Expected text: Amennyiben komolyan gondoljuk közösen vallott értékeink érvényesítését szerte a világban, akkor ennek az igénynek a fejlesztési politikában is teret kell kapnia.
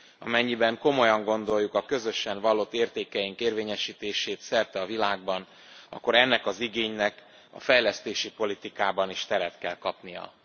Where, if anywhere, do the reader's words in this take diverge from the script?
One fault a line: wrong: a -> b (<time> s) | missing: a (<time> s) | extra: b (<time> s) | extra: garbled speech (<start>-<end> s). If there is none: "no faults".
extra: a (1.7 s)